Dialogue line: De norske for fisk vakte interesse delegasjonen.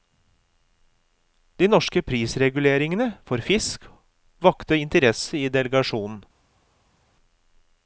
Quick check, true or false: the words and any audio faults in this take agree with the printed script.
false